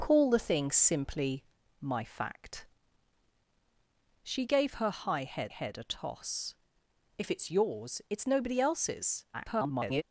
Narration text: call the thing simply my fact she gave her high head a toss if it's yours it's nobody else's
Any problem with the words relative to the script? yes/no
yes